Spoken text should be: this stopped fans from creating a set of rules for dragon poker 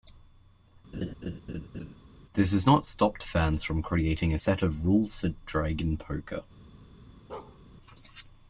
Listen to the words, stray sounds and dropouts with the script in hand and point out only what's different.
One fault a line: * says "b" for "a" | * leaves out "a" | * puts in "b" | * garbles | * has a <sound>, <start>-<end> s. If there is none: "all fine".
* has a laugh, 0.9-2.0 s
* puts in "has not"
* has a bark, 7.3-7.6 s